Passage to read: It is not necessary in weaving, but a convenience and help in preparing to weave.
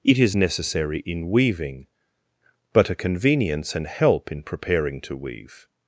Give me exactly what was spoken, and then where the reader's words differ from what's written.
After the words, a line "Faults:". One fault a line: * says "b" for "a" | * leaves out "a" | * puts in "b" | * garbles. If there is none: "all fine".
It is necessary in weaving, but a convenience and help in preparing to weave.
Faults:
* leaves out "not"